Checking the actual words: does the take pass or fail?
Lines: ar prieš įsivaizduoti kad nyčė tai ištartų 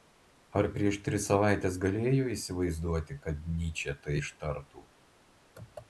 fail